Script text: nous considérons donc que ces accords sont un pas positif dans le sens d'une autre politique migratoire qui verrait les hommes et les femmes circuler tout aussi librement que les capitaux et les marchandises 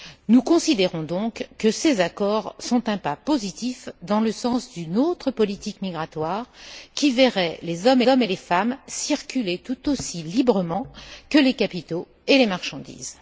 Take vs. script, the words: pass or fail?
fail